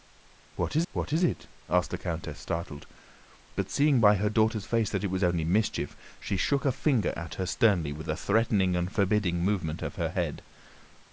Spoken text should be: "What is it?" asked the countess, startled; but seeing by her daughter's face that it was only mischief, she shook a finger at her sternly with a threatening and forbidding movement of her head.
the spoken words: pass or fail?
fail